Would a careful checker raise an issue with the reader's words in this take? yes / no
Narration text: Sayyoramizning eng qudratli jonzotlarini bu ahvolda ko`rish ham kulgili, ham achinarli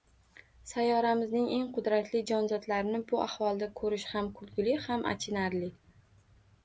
no